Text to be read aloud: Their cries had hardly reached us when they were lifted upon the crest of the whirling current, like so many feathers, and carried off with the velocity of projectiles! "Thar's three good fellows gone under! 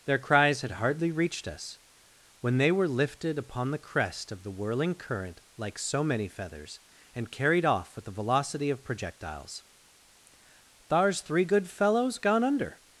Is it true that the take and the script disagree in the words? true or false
false